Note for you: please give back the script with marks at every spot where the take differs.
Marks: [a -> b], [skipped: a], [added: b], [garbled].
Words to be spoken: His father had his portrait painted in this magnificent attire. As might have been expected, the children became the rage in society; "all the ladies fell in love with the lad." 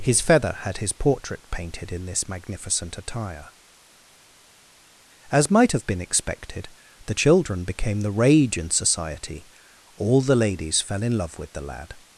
His [father -> feather] had his portrait painted in this magnificent attire. As might have been expected, the children became the rage in society; "all the ladies fell in love with the lad."